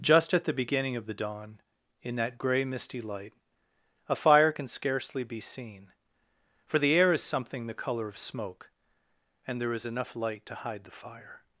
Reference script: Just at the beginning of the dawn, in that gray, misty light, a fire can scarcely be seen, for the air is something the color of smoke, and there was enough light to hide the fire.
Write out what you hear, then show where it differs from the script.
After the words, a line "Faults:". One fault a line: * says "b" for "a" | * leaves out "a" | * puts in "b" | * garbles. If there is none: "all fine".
Just at the beginning of the dawn, in that gray, misty light, a fire can scarcely be seen, for the air is something the color of smoke, and there is enough light to hide the fire.
Faults:
* says "is" for "was"